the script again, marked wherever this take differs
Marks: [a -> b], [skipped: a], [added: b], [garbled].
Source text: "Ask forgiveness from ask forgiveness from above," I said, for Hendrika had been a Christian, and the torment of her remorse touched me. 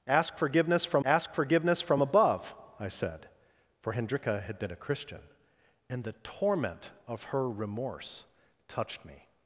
"Ask forgiveness from ask forgiveness from above," I said, for Hendrika had been a Christian, and the torment of her remorse touched me.